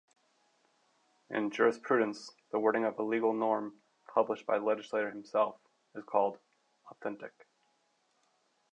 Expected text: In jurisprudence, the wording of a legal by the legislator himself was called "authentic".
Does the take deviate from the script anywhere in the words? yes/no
yes